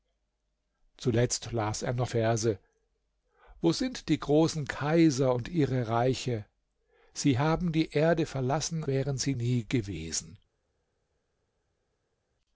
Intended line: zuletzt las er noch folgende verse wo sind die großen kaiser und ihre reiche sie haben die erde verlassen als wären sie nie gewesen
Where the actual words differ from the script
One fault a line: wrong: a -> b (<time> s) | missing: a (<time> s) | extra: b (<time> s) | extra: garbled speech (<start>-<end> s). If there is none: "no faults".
missing: folgende (2.1 s)
missing: als (8.8 s)